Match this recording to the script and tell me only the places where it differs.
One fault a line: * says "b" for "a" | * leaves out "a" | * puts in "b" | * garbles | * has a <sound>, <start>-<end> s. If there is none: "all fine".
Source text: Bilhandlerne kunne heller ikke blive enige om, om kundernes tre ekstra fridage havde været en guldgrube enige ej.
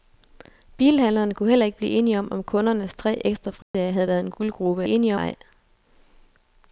* has a dropout, 3.6-3.7 s